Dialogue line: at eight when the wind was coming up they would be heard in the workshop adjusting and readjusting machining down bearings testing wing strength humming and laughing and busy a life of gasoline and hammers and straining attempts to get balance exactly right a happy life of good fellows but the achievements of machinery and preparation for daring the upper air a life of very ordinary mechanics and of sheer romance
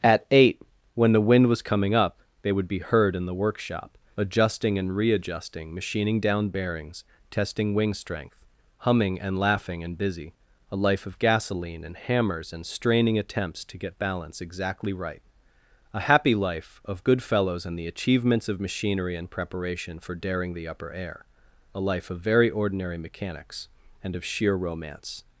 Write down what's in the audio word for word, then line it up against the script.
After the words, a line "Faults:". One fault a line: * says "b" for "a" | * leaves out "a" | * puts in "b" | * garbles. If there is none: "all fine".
at eight when the wind was coming up they would be heard in the workshop adjusting and readjusting machining down bearings testing wing strength humming and laughing and busy a life of gasoline and hammers and straining attempts to get balance exactly right a happy life of good fellows and the achievements of machinery and preparation for daring the upper air a life of very ordinary mechanics and of sheer romance
Faults:
* says "and" for "but"